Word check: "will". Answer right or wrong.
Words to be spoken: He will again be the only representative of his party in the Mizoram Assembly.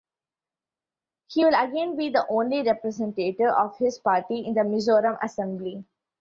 right